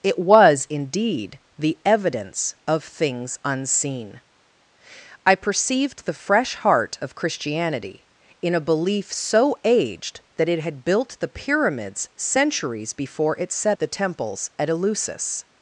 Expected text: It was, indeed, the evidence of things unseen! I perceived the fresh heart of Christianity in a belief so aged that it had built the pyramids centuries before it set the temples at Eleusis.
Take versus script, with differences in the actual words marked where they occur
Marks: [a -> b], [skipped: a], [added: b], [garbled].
It was, indeed, the evidence of things unseen! I perceived the fresh heart of Christianity in a belief so aged that it had built the pyramids centuries before it set the temples at Eleusis.